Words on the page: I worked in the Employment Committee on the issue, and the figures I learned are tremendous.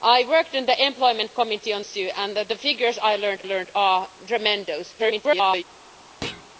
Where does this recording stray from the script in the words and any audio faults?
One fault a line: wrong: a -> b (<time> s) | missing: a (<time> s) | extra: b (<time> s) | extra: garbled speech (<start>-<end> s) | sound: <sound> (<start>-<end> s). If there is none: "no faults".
missing: the (1.8 s)
extra: learned (3.4 s)
extra: garbled speech (5.0-5.6 s)
sound: thud (6.2-6.5 s)